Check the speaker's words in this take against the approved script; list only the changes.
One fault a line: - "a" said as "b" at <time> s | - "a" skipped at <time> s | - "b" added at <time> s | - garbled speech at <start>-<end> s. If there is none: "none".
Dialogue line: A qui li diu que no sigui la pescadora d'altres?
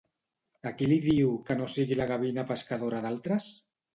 - "gavina" added at 2.1 s